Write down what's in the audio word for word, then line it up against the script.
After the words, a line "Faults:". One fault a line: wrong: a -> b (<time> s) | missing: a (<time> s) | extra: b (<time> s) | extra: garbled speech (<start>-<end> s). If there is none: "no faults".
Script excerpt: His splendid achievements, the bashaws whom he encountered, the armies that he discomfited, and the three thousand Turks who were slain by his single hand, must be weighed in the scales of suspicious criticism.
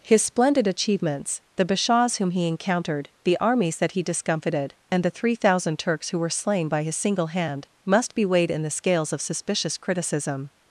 His splendid achievements, the bashaws whom he encountered, the armies that he discomfited, and the three thousand Turks who were slain by his single hand, must be weighed in the scales of suspicious criticism.
Faults:
no faults